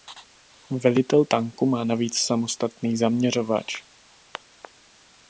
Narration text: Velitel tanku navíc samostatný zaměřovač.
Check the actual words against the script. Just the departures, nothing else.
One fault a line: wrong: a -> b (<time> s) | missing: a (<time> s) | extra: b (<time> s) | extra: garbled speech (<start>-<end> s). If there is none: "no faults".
extra: má (1.7 s)